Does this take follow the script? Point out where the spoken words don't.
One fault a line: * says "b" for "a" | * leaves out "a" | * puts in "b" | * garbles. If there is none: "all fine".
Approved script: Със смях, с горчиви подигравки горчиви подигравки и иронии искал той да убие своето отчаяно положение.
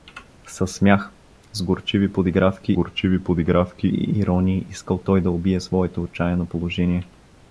all fine